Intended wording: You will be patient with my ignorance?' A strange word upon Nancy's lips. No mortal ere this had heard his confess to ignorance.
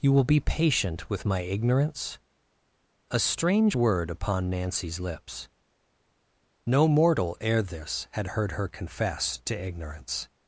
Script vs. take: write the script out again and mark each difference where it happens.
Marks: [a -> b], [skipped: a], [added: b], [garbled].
You will be patient with my ignorance?' A strange word upon Nancy's lips. No mortal ere this had heard [his -> her] confess to ignorance.